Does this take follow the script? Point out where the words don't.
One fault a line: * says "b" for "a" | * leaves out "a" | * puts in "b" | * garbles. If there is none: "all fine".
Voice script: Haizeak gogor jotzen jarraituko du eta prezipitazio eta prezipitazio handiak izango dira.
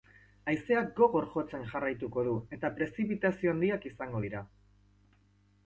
* leaves out "eta prezipitazio"